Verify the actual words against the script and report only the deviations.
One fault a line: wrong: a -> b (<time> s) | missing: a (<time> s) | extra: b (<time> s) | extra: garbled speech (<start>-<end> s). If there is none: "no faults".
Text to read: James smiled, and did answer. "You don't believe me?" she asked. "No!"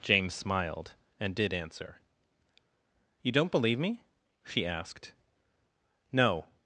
no faults